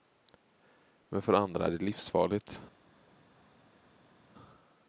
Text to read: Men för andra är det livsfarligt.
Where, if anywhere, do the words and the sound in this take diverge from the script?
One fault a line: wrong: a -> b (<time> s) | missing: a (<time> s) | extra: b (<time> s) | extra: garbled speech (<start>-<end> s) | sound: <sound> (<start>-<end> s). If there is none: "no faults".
no faults